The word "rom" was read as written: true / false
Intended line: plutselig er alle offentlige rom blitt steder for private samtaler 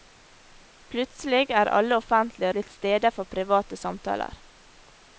false